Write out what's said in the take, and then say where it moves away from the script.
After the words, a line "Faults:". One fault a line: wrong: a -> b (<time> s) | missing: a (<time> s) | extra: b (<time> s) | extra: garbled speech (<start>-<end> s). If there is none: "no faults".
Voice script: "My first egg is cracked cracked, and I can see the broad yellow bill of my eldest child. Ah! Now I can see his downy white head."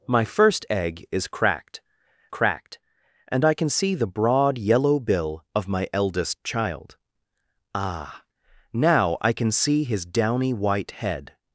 "My first egg is cracked cracked, and I can see the broad yellow bill of my eldest child. Ah! Now I can see his downy white head."
Faults:
no faults